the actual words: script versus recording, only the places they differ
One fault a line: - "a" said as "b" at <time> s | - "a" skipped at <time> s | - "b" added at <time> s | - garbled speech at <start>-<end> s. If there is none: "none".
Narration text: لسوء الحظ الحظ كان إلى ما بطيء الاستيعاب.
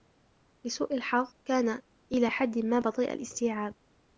- "الحظ" skipped at 1.3 s
- "حد" added at 2.3 s